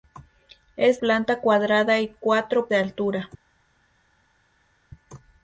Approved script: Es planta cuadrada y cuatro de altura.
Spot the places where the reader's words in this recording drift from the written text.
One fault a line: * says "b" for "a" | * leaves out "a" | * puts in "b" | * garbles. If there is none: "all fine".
all fine